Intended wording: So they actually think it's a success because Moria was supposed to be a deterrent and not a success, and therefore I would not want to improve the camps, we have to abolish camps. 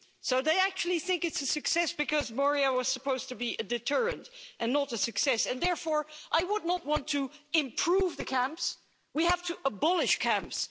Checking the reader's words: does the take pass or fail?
pass